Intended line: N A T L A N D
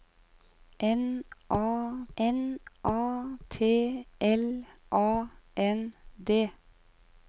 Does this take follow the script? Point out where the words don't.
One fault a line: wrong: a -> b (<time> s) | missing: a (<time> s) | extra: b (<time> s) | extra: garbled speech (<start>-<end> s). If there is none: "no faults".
extra: n A (2.2 s)